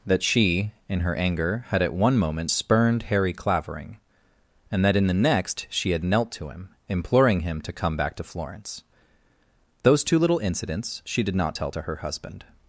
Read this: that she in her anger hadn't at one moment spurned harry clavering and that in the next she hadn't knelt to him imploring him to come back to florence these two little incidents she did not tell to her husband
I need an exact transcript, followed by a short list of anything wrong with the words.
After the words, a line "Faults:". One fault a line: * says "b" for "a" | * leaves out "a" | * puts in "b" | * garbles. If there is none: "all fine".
that she in her anger had at one moment spurned harry clavering and that in the next she had knelt to him imploring him to come back to florence those two little incidents she did not tell to her husband
Faults:
* says "had" for "hadn't"
* says "had" for "hadn't"
* says "those" for "these"